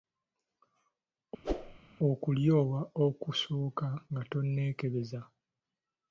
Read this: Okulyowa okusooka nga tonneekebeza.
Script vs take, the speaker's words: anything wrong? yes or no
no